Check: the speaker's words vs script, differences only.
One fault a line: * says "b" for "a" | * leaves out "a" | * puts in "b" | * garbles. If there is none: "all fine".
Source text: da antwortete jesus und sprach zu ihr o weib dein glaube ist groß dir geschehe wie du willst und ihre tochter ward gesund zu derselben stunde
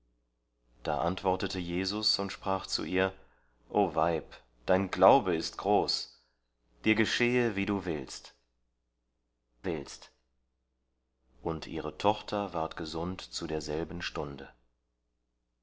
* puts in "willst"